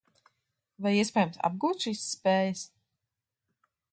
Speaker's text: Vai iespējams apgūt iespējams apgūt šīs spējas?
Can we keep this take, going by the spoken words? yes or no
no